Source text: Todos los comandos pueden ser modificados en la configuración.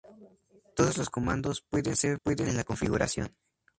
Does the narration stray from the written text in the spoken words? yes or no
yes